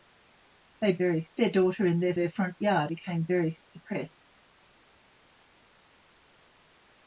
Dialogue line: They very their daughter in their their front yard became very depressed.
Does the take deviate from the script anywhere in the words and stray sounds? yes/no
no